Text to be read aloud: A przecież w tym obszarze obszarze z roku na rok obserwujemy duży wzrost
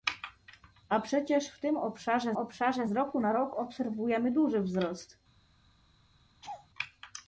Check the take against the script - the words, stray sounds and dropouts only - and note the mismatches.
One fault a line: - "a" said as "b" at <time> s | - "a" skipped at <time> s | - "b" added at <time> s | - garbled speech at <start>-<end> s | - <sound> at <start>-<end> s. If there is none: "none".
- laugh at 6.4-6.7 s